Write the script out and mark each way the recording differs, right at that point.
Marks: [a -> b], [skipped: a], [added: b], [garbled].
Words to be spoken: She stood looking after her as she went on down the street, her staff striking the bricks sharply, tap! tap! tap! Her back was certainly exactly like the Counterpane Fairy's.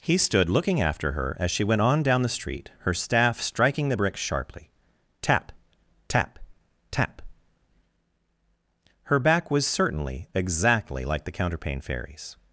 [She -> He] stood looking after her as she went on down the street, her staff striking the bricks sharply, tap! tap! tap! Her back was certainly exactly like the Counterpane Fairy's.